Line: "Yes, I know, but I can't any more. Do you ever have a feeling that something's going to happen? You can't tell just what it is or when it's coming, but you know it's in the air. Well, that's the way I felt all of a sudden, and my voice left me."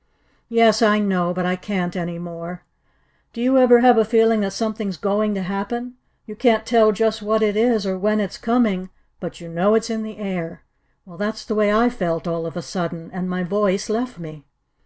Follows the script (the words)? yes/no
yes